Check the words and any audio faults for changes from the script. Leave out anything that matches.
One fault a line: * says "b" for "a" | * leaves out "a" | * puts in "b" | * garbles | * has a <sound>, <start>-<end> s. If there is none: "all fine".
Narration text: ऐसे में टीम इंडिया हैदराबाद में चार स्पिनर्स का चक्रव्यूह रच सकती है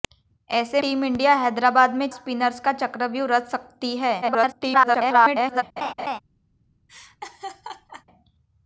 * leaves out "में"
* leaves out "चार"
* garbles
* has a laugh, 5.8-6.2 s
* has a laugh, 6.9-8.0 s